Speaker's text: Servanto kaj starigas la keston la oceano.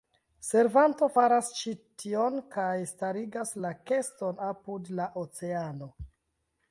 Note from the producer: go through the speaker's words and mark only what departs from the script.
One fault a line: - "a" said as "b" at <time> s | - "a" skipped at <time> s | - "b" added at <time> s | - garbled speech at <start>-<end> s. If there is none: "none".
- "faras ĉi tion" added at 1.1 s
- "apud" added at 4.5 s